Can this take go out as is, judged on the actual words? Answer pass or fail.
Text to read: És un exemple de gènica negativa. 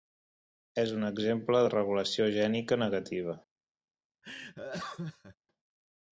fail